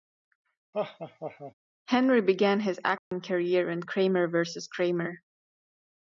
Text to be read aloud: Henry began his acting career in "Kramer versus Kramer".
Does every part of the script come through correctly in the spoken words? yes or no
yes